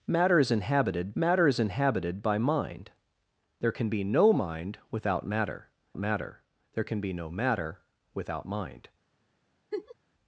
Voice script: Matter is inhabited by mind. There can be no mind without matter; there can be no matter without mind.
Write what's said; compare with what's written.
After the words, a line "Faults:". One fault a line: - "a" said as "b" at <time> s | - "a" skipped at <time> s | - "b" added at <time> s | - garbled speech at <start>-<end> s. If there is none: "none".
Matter is inhabited matter is inhabited by mind. There can be no mind without matter matter; there can be no matter without mind.
Faults:
- "matter is inhabited" added at 1.1 s
- "matter" added at 6.0 s